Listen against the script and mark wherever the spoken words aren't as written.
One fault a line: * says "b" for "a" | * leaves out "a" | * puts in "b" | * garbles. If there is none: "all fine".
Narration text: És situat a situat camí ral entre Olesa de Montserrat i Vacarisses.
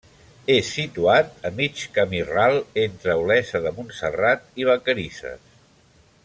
* says "mig" for "situat"